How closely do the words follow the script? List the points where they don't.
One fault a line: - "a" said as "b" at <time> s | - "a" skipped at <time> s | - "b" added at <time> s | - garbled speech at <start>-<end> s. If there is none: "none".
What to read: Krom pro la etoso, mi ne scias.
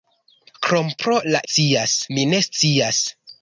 - "etoso" said as "scias" at 1.4 s